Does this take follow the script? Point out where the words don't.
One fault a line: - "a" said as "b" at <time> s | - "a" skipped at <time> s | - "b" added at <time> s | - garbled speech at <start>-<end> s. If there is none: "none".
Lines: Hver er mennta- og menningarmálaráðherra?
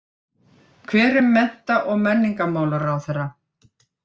none